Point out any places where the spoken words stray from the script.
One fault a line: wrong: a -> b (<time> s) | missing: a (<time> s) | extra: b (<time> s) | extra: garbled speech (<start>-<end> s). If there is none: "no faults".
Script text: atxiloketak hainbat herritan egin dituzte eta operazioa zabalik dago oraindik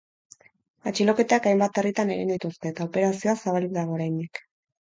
no faults